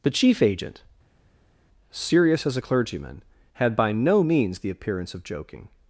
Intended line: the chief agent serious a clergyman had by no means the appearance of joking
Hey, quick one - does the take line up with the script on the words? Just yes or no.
no